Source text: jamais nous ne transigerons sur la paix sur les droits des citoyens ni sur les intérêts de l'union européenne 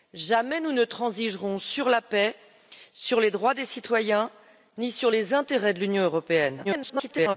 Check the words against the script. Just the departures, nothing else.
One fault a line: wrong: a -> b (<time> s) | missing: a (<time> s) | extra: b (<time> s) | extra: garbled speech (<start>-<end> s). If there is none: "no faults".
extra: garbled speech (6.6-7.4 s)